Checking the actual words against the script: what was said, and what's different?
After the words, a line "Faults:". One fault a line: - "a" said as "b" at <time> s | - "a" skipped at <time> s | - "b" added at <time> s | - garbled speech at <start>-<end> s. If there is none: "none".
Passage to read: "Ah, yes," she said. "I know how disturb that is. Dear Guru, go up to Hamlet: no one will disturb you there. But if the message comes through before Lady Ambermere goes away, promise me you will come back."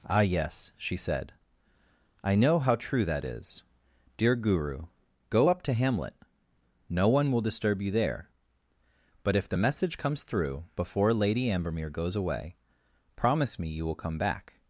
"Ah, yes," she said. "I know how true that is. Dear Guru, go up to Hamlet: no one will disturb you there. But if the message comes through before Lady Ambermere goes away, promise me you will come back."
Faults:
- "disturb" said as "true" at 2.8 s